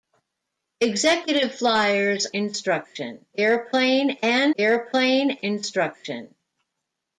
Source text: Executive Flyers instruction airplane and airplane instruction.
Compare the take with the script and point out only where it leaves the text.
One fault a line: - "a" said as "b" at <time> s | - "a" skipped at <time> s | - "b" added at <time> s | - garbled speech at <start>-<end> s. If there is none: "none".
none